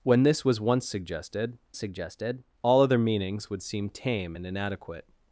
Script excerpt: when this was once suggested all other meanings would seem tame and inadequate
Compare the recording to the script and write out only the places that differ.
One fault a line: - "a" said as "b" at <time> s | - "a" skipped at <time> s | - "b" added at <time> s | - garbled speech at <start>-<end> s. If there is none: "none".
- "suggested" added at 1.8 s